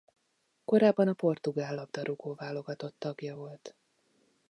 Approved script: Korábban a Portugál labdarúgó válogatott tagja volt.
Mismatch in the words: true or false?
false